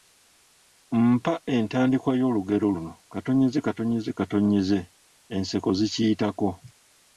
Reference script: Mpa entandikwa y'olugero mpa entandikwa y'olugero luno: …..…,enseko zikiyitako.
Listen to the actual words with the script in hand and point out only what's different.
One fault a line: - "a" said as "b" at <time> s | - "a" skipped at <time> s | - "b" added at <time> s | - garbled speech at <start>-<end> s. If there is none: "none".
- "mpa entandikwa y'olugero" skipped at 2.7 s